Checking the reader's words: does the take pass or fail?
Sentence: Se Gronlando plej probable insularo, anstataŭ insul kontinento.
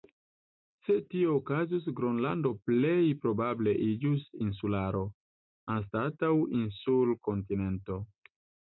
fail